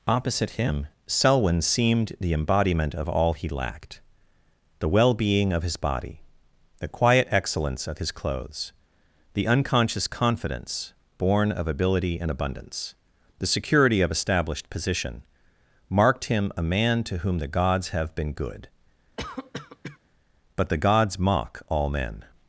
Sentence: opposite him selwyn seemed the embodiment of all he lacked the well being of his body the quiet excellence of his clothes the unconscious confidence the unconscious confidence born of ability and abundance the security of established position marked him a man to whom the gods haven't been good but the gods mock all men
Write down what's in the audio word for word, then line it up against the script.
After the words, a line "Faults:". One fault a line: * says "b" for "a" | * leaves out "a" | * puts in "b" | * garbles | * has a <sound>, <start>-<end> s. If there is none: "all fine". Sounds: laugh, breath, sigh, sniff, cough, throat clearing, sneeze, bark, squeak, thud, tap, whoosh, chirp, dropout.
opposite him selwyn seemed the embodiment of all he lacked the well being of his body the quiet excellence of his clothes the unconscious confidence born of ability and abundance the security of established position marked him a man to whom the gods have been good but the gods mock all men
Faults:
* leaves out "the unconscious confidence"
* says "have" for "haven't"
* has a cough, 19.2-20.0 s